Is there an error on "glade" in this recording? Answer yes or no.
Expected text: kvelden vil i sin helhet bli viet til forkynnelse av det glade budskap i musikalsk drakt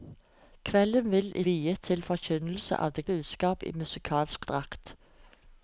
yes